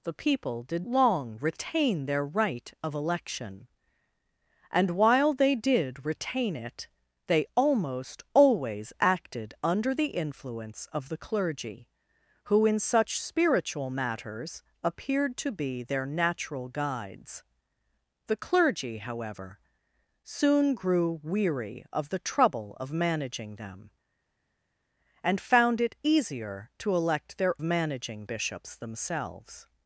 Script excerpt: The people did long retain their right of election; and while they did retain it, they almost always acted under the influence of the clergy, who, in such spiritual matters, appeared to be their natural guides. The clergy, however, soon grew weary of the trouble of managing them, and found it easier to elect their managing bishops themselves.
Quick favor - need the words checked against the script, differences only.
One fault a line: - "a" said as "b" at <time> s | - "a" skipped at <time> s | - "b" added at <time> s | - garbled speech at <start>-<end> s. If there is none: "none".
none